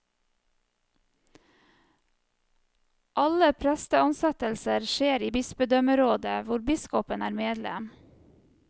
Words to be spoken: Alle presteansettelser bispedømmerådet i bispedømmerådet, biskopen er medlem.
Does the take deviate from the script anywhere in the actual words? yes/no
yes